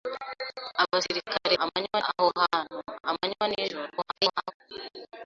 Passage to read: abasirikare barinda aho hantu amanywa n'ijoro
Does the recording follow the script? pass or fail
fail